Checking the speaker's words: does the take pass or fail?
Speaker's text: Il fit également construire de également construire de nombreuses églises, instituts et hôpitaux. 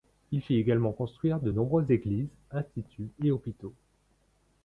fail